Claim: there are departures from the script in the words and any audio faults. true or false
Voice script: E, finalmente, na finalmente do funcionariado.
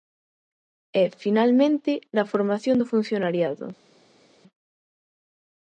true